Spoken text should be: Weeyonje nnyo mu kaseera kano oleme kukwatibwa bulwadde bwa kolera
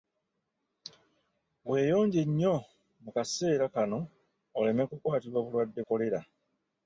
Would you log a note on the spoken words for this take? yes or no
yes